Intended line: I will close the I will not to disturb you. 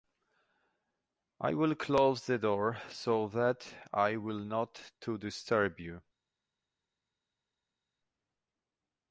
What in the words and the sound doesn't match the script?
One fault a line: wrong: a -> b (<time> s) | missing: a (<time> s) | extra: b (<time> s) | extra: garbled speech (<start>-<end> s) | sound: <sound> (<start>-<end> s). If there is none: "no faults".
extra: door so that (2.4 s)